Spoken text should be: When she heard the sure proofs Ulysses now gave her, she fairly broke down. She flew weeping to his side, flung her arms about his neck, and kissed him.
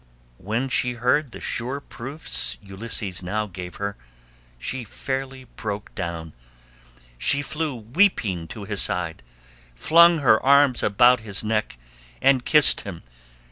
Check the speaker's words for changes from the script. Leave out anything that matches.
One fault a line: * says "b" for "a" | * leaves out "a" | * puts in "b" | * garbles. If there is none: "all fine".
all fine